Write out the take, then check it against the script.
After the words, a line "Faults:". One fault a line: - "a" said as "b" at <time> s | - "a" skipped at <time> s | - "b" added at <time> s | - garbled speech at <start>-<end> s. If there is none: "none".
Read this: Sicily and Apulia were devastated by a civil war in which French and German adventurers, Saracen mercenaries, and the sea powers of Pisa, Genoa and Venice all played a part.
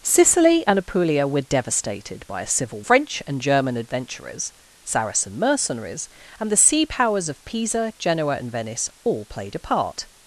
Sicily and Apulia were devastated by a civil French and German adventurers, Saracen mercenaries, and the sea powers of Pisa, Genoa and Venice all played a part.
Faults:
- "war in which" skipped at 2.8 s